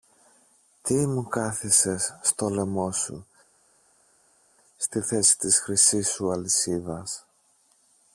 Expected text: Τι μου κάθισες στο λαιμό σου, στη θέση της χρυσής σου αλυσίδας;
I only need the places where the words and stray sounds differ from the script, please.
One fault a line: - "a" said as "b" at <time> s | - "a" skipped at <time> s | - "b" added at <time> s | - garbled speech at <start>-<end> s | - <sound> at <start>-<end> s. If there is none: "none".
none